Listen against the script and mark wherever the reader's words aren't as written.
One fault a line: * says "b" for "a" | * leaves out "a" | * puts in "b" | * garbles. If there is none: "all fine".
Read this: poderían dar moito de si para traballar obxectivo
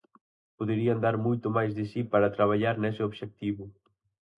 * puts in "máis"
* puts in "nese"